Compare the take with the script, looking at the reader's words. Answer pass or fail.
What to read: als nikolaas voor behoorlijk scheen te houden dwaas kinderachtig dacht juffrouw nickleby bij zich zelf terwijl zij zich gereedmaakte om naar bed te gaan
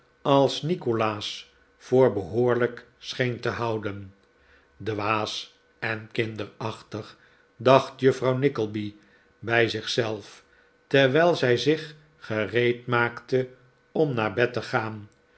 fail